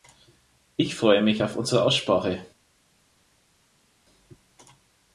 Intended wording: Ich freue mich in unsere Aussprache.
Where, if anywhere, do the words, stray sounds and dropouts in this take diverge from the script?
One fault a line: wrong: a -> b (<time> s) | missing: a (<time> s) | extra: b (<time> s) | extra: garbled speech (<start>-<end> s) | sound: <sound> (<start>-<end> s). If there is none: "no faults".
wrong: in -> auf (1.4 s)